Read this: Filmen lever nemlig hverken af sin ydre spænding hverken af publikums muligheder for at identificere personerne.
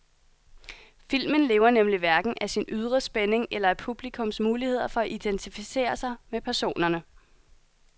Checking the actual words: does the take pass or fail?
fail